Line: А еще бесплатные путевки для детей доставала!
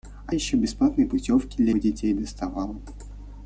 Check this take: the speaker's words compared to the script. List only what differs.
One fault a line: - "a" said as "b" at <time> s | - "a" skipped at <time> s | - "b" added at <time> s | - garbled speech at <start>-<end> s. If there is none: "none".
none